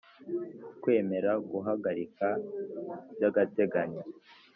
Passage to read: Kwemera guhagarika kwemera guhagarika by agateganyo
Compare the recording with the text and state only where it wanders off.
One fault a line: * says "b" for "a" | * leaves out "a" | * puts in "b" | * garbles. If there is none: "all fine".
* leaves out "kwemera guhagarika"